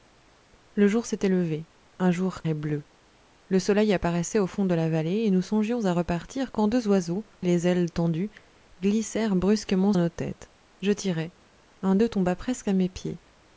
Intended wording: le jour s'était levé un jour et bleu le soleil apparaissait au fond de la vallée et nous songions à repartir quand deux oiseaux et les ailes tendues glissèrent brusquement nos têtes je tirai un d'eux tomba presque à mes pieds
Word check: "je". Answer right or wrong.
right